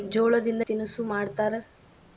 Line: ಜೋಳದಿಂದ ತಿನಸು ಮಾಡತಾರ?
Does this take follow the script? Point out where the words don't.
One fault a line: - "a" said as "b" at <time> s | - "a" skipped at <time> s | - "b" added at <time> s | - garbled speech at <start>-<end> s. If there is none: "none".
none